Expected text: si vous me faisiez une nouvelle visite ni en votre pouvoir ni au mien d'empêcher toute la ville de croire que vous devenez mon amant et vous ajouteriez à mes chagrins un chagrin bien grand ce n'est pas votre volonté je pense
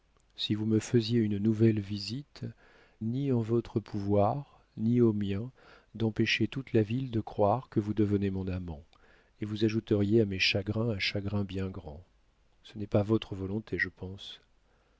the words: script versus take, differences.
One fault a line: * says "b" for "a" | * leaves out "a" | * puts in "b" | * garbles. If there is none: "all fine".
all fine